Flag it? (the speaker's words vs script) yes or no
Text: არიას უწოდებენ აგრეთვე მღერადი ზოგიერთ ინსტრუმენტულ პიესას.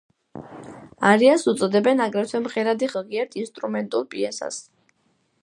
no